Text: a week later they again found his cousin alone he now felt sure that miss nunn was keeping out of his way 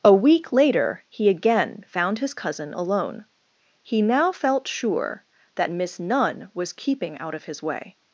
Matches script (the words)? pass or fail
fail